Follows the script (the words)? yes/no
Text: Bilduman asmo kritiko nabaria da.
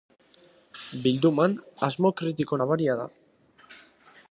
yes